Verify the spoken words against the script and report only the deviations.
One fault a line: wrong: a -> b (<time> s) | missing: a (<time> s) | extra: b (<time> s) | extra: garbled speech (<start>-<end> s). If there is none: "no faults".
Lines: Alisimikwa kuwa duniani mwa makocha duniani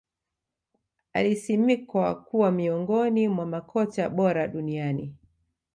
wrong: duniani -> miongoni (2.5 s)
extra: bora (4.1 s)